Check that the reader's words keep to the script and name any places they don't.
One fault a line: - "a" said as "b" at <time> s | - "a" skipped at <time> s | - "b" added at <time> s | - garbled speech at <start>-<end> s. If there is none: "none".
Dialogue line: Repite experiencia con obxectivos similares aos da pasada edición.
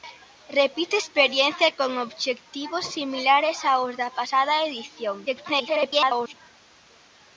- garbled speech at 5.3-6.3 s